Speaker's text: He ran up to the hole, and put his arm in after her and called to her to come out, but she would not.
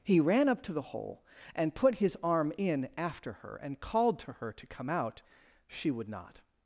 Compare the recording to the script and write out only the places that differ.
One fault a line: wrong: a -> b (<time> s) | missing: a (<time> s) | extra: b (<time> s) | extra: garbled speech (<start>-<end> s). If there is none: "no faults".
missing: but (5.2 s)